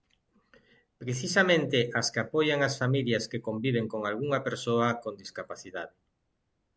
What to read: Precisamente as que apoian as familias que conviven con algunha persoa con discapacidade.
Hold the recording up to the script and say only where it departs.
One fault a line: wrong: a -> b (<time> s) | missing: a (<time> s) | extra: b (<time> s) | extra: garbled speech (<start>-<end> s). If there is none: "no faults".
no faults